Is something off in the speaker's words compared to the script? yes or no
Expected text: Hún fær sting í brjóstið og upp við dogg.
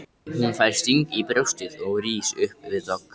yes